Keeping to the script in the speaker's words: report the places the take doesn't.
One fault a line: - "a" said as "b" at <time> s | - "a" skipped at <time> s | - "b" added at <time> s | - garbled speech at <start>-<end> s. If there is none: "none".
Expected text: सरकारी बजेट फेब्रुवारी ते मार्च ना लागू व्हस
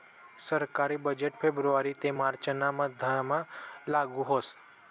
- "मधमा" added at 2.7 s